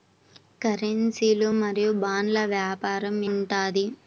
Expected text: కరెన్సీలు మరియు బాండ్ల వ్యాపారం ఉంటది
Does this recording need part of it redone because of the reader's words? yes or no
no